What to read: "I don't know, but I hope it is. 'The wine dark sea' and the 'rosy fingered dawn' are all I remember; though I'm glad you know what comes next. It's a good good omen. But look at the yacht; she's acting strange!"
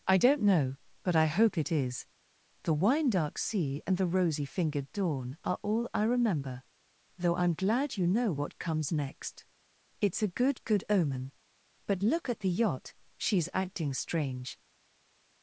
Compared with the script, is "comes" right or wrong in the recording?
right